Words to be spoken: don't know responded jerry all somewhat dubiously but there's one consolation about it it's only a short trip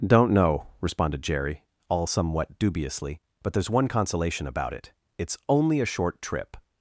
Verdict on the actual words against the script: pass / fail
pass